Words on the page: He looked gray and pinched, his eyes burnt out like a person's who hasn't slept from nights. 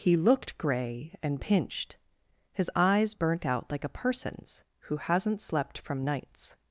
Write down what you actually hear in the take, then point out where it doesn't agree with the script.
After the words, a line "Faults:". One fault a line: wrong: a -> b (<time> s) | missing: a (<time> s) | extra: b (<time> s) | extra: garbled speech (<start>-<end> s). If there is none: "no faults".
He looked gray and pinched, his eyes burnt out like a person's who hasn't slept from nights.
Faults:
no faults